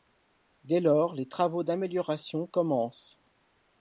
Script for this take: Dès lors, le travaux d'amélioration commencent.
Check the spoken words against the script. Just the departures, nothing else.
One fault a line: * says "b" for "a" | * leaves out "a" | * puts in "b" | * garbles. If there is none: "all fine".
* says "les" for "le"